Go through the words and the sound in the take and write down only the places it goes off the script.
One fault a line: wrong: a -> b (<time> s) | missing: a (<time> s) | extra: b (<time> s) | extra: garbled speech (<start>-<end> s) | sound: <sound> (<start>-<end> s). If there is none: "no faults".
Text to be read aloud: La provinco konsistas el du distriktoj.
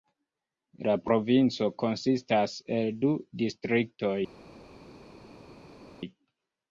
no faults